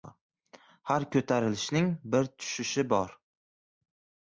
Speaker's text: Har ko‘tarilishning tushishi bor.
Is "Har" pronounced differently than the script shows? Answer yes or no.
no